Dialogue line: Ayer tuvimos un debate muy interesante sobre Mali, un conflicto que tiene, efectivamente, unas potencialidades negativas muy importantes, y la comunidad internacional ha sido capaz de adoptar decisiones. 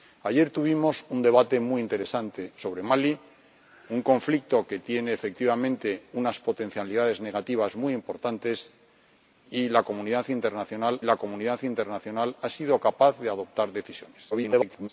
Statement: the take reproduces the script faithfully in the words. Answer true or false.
false